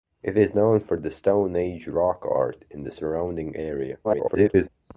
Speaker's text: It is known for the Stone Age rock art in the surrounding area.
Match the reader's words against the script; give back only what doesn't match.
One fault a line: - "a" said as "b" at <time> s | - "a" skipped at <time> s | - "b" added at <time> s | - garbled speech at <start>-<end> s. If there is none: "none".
- garbled speech at 4.0-4.7 s